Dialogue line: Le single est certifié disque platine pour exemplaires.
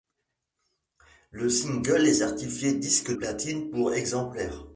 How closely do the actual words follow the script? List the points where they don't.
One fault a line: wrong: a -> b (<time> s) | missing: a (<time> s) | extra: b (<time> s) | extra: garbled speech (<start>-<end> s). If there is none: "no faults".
no faults